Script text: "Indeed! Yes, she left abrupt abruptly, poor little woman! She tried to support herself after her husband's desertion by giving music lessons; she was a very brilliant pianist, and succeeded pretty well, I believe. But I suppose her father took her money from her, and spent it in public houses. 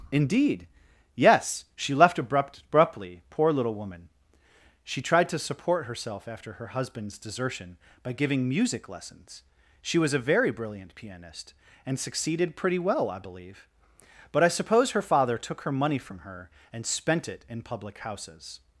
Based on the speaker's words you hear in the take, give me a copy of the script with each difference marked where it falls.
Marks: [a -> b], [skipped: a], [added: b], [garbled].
"Indeed! Yes, she left abrupt abruptly, poor little woman! She tried to support herself after her husband's desertion by giving music lessons; she was a very brilliant pianist, and succeeded pretty well, I believe. But I suppose her father took her money from her, and spent it in public houses.